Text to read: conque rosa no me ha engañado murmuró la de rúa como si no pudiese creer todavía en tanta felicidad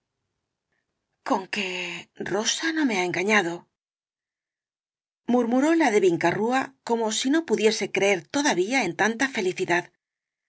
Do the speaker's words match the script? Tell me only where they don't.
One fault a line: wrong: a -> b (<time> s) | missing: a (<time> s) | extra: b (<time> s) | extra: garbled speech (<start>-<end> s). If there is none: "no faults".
extra: vinca (6.0 s)